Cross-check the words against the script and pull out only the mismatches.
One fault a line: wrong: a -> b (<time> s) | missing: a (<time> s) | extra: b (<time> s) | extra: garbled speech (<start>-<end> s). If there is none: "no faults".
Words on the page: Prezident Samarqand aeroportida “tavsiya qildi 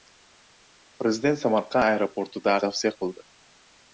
no faults